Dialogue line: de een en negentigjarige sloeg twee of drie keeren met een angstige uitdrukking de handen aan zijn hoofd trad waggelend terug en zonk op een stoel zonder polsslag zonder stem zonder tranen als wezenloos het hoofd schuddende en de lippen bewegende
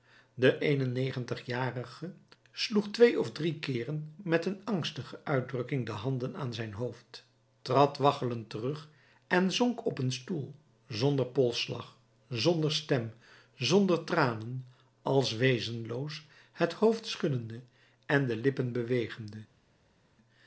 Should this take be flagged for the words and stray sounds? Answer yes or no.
no